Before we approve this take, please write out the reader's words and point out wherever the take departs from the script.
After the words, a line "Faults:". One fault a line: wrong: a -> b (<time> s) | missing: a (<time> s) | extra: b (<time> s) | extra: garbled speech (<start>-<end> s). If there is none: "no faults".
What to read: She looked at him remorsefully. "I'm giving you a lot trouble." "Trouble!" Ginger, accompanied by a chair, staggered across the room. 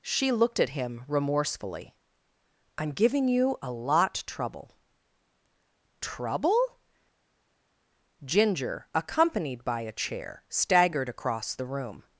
She looked at him remorsefully. "I'm giving you a lot trouble." "Trouble!" Ginger, accompanied by a chair, staggered across the room.
Faults:
no faults